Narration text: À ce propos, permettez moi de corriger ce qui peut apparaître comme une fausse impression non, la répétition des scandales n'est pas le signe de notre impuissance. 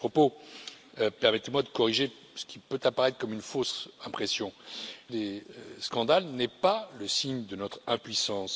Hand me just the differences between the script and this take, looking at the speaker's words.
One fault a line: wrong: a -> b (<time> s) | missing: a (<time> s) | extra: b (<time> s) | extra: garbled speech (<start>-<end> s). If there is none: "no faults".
missing: non la répétition (4.5 s)